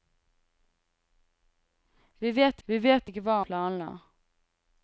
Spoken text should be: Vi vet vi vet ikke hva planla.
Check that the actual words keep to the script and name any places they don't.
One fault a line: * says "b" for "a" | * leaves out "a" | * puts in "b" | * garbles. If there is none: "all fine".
all fine